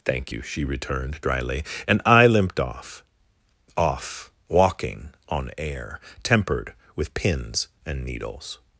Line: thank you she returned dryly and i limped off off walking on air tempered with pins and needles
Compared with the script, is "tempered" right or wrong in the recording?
right